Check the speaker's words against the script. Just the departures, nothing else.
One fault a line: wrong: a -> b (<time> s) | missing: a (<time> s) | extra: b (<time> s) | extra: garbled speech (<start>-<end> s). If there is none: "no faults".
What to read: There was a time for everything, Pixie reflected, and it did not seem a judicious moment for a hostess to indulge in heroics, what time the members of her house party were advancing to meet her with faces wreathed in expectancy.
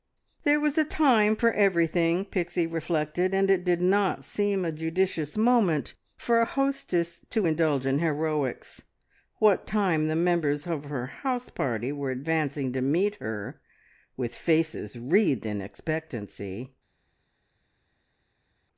no faults